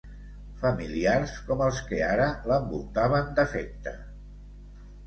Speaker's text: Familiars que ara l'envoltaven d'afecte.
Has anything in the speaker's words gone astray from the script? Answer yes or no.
yes